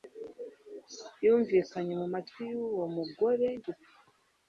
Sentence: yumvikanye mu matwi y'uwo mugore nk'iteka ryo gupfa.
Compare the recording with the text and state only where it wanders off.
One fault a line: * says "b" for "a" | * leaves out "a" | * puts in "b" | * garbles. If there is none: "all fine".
* leaves out "nk'iteka ryo"